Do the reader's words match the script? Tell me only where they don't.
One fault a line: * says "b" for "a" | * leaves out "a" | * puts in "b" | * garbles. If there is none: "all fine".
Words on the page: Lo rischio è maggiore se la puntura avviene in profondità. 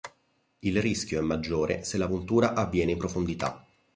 * says "Il" for "Lo"